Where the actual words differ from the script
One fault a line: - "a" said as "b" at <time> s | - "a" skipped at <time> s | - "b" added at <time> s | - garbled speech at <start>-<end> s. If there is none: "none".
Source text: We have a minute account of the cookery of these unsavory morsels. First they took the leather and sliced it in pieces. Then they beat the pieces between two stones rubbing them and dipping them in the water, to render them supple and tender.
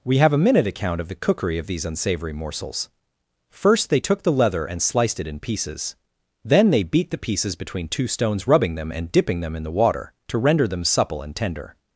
none